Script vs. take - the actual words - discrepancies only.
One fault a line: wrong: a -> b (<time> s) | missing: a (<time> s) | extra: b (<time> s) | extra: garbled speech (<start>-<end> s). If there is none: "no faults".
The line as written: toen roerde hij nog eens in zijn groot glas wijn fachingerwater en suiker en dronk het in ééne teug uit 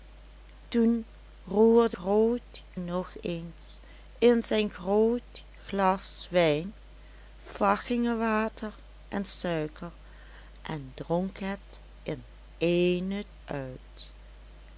wrong: hij -> groot (1.9 s)
missing: teug (13.2 s)